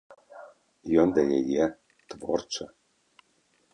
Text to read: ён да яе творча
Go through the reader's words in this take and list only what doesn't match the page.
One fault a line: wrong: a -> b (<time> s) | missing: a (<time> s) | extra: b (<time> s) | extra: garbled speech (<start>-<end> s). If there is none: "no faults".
no faults